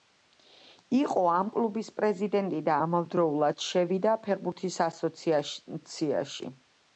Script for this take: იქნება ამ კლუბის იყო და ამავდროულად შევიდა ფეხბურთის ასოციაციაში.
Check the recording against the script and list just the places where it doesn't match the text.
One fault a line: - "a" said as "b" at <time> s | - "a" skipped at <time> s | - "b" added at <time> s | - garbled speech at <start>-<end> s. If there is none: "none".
- "იქნება" said as "იყო" at 1.0 s
- "იყო" said as "პრეზიდენტი" at 2.0 s